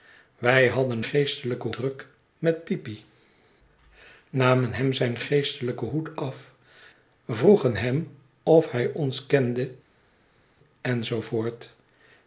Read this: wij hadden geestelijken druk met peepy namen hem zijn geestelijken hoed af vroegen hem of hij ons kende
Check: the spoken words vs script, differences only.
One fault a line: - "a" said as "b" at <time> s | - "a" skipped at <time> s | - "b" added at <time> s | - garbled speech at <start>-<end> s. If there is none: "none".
none